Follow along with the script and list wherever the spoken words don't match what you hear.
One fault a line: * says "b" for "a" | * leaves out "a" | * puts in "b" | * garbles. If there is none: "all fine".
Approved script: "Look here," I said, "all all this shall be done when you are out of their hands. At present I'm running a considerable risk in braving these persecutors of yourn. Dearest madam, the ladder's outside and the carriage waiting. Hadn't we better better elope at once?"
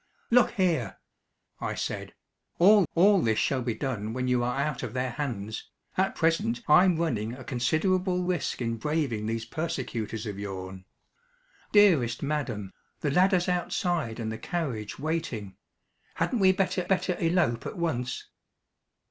all fine